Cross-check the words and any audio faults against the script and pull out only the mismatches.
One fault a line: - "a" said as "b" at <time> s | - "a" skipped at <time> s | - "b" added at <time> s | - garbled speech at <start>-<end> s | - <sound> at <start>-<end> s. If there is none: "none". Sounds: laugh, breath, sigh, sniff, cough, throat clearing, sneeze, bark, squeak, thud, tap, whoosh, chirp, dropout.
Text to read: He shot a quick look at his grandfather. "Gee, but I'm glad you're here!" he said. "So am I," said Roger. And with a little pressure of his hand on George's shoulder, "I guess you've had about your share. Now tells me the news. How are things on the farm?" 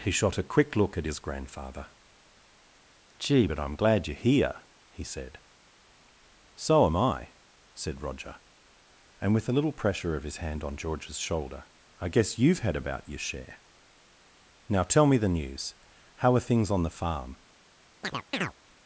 - "tells" said as "tell" at 14.8 s
- chirp at 18.0-18.5 s